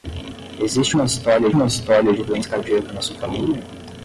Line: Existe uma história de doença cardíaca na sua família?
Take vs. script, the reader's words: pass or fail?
fail